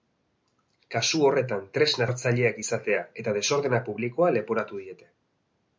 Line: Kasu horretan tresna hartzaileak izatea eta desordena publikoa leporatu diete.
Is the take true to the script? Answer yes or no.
yes